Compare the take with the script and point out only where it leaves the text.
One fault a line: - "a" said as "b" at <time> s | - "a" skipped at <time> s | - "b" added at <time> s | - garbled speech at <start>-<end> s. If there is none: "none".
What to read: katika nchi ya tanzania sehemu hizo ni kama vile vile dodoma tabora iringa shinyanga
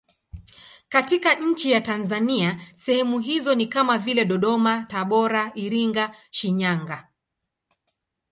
- "vile" skipped at 4.3 s